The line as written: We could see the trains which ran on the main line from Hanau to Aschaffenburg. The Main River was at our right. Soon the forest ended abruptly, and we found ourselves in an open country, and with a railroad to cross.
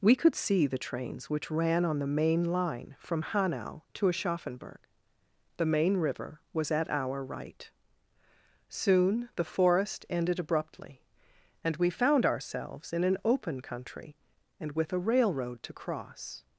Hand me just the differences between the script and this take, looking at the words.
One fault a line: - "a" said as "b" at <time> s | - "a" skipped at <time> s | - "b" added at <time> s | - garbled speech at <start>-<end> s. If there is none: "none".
none